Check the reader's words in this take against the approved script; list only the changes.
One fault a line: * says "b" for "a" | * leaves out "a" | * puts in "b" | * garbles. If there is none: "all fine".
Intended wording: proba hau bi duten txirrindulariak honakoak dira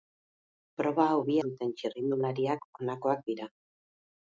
all fine